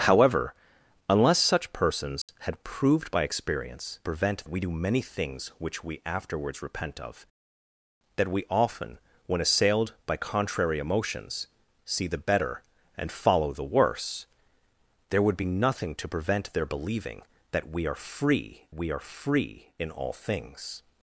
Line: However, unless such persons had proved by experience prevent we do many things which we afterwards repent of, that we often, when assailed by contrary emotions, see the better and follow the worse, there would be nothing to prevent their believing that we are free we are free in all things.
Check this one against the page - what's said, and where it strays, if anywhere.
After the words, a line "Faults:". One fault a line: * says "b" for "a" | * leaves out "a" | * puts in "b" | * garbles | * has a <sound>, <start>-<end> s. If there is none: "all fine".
However, unless such persons had proved by experience prevent we do many things which we afterwards repent of, that we often, when assailed by contrary emotions, see the better and follow the worse, there would be nothing to prevent their believing that we are free we are free in all things.
Faults:
* has a dropout, 2.2-2.3 s